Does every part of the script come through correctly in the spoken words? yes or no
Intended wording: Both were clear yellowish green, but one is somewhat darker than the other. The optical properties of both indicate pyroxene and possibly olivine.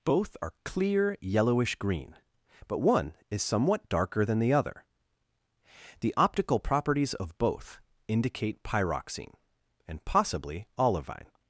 no